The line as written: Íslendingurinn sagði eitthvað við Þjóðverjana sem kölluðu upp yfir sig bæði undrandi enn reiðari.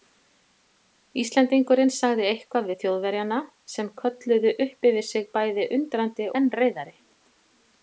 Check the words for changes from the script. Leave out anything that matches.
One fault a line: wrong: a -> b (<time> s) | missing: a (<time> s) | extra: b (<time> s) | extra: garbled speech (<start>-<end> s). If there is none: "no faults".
no faults